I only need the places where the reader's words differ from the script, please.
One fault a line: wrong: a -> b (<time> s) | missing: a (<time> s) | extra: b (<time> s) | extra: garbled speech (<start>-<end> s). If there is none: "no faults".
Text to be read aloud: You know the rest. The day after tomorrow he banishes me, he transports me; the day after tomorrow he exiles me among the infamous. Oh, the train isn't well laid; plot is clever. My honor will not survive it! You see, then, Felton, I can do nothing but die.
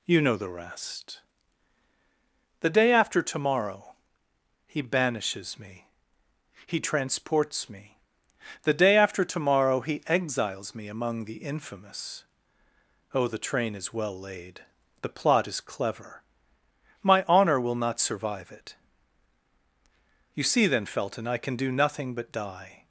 wrong: isn't -> is (13.8 s)
extra: the (15.0 s)